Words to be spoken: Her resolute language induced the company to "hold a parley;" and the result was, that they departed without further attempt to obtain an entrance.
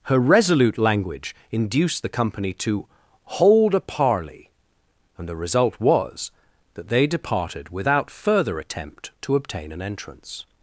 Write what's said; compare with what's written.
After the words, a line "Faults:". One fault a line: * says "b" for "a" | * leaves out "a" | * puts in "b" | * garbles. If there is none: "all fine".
Her resolute language induced the company to "hold a parley;" and the result was, that they departed without further attempt to obtain an entrance.
Faults:
all fine